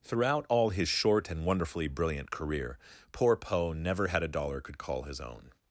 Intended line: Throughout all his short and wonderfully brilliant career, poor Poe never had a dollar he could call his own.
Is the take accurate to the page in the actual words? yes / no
no